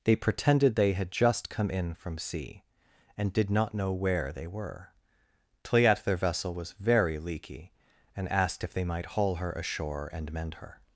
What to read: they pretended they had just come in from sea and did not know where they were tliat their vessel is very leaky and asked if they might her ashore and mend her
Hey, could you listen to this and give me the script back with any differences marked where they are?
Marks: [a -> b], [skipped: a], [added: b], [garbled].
they pretended they had just come in from sea and did not know where they were tliat their vessel [is -> was] very leaky and asked if they might [added: haul] her ashore and mend her